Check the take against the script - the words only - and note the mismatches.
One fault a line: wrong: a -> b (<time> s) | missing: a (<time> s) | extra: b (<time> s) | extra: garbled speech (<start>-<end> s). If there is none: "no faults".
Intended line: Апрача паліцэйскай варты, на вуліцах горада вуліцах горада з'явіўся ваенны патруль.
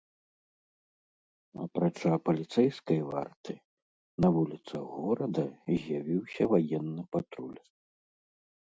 missing: вуліцах горада (5.4 s)